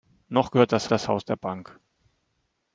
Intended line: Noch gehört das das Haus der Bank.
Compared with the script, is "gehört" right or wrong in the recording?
right